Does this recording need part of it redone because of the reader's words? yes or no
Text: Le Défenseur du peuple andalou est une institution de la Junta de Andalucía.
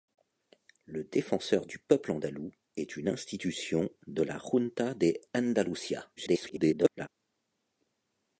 yes